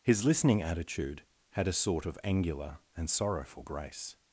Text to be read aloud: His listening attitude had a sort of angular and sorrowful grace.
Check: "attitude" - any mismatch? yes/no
no